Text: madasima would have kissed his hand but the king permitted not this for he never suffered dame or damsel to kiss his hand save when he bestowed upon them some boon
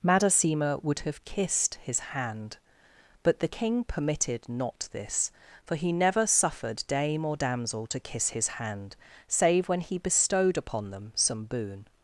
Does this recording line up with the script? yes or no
yes